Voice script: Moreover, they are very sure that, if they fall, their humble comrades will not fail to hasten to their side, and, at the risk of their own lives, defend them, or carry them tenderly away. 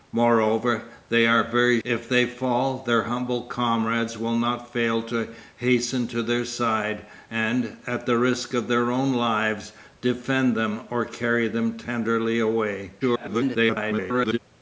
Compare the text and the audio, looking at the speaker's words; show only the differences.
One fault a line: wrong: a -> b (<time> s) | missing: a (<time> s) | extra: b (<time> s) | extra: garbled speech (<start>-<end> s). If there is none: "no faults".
missing: sure that (1.8 s)
extra: garbled speech (13.0-14.4 s)